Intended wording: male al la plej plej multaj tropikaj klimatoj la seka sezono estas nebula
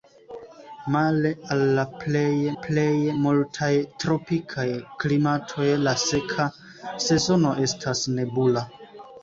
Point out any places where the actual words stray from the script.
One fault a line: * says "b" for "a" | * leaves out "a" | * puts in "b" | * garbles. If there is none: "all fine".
all fine